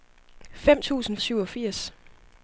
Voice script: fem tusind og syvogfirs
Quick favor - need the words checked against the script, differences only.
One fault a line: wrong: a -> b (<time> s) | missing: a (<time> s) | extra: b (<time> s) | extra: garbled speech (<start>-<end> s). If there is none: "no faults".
no faults